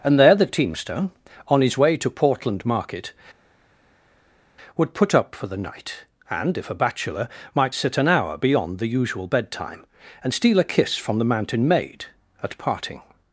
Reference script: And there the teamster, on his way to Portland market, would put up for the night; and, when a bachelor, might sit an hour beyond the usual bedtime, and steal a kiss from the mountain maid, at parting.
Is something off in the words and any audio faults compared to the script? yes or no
yes